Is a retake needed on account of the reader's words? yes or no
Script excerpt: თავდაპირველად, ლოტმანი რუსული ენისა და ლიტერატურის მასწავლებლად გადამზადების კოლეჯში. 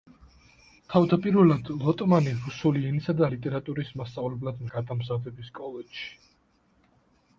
no